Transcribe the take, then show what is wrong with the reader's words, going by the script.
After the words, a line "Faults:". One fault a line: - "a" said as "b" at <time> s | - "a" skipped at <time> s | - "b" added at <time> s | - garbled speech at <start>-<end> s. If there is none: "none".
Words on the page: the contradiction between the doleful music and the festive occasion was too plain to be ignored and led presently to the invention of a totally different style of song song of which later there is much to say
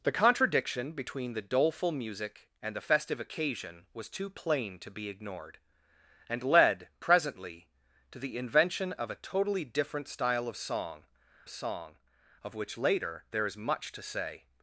the contradiction between the doleful music and the festive occasion was too plain to be ignored and led presently to the invention of a totally different style of song song of which later there is much to say
Faults:
none